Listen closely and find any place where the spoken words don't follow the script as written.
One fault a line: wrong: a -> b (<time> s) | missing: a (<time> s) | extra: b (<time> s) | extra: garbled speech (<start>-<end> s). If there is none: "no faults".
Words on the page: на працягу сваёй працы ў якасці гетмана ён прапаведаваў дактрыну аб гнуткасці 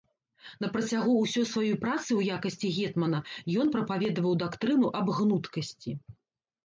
extra: ўсёй (1.2 s)